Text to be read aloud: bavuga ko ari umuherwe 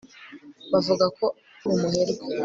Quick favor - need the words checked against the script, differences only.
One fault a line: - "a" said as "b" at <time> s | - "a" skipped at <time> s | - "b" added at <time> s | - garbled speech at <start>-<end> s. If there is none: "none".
- "ari" skipped at 1.2 s